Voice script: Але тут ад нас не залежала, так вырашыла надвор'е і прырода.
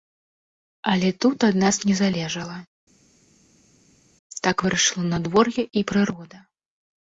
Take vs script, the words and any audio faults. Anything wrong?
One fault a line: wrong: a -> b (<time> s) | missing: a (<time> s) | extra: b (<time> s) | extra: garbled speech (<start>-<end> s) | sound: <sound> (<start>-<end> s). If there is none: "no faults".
no faults